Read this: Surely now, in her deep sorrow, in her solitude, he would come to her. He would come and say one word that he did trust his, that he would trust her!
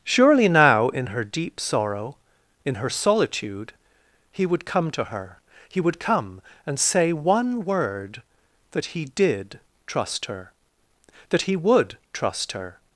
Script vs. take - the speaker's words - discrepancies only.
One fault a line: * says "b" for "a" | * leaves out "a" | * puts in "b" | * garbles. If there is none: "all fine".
* says "her" for "his"